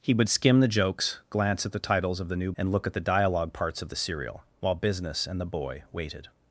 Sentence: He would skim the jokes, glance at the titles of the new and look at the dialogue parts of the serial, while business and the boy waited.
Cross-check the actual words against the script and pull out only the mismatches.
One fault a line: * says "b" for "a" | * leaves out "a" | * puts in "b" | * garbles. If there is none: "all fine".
all fine